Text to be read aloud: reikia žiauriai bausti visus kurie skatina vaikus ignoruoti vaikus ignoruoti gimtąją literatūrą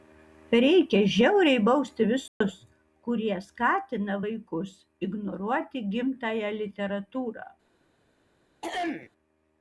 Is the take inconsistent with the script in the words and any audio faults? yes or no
yes